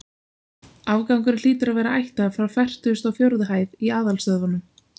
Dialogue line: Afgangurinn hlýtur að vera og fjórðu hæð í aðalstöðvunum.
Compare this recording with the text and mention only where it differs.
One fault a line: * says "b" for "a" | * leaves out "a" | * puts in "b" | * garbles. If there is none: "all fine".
* puts in "ættaður frá fertugustu"